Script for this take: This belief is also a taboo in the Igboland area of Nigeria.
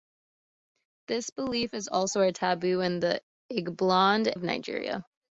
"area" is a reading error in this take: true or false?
true